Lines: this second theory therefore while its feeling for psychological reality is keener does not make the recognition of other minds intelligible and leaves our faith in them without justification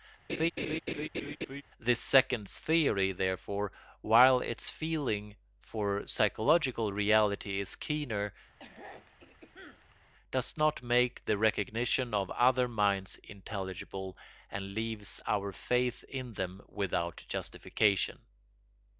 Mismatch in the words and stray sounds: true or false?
true